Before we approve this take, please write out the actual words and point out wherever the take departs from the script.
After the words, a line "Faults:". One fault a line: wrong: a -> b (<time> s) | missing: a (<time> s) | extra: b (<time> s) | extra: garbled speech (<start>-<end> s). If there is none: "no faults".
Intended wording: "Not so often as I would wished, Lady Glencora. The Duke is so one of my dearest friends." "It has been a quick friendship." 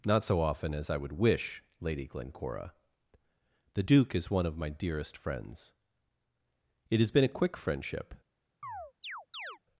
"Not so often as I would wish, Lady Glencora. The Duke is one of my dearest friends." "It has been a quick friendship."
Faults:
wrong: wished -> wish (1.1 s)
missing: so (4.3 s)